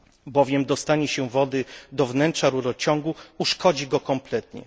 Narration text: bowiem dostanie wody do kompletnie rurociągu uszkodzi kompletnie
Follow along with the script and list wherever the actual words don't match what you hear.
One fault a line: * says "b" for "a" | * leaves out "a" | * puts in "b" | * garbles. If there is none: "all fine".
* puts in "się"
* says "wnętrza" for "kompletnie"
* puts in "go"